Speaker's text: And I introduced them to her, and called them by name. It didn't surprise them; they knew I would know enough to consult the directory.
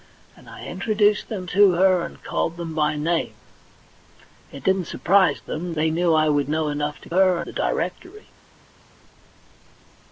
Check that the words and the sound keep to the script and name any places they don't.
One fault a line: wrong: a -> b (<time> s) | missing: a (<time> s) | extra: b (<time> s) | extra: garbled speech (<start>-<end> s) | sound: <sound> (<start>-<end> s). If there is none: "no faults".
wrong: consult -> her (7.1 s)